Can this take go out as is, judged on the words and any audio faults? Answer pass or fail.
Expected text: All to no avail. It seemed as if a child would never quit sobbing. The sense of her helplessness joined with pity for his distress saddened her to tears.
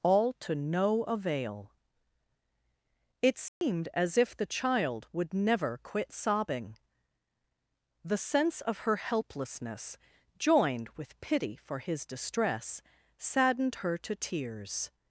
fail